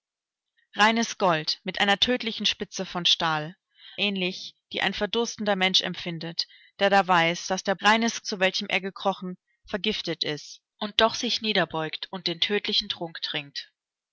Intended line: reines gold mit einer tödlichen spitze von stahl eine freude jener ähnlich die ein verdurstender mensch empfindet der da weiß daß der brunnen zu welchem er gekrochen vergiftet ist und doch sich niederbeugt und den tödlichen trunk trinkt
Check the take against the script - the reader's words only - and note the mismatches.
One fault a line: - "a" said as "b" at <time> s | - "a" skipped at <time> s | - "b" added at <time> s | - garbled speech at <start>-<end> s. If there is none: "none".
- "eine freude jener" skipped at 3.5 s
- "brunnen" said as "reines" at 7.8 s